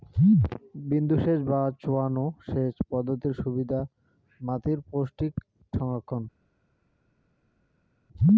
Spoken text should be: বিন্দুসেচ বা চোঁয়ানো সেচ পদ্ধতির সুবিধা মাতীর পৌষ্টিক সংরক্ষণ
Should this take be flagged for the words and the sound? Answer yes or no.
no